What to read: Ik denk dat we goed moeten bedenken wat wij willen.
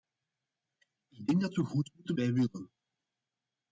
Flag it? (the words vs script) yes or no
yes